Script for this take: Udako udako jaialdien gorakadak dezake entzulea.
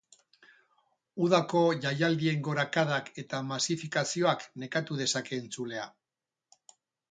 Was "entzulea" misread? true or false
false